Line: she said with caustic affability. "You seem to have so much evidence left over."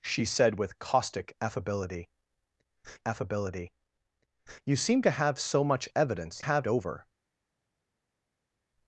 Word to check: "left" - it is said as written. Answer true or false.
false